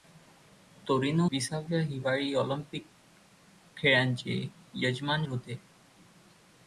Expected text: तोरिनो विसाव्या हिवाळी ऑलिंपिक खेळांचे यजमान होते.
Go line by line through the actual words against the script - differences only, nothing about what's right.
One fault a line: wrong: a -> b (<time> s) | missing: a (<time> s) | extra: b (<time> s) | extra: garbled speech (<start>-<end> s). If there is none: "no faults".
no faults